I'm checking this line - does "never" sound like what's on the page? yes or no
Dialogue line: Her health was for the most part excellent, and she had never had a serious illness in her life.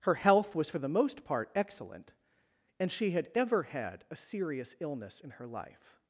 no